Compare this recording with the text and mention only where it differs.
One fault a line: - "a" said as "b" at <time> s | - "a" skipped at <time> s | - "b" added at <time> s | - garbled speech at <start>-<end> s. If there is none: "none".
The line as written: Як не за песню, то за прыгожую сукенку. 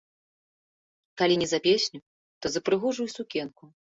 - "Як" said as "Калі" at 1.2 s